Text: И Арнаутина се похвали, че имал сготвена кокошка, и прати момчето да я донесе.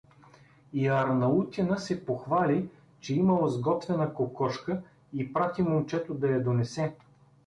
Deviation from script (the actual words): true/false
false